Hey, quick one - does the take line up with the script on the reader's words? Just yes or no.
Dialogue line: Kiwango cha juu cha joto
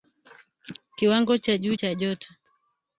yes